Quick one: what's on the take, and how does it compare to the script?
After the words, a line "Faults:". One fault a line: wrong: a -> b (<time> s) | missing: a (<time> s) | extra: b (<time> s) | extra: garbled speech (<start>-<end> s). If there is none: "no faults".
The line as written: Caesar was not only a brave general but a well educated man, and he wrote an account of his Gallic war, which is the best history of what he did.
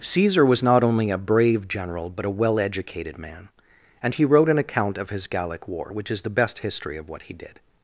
Caesar was not only a brave general but a well educated man, and he wrote an account of his Gallic war, which is the best history of what he did.
Faults:
no faults